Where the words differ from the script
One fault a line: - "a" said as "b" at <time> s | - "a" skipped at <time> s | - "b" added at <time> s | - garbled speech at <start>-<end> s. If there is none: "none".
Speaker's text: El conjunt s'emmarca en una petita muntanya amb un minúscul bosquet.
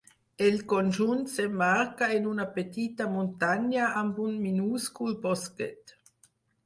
none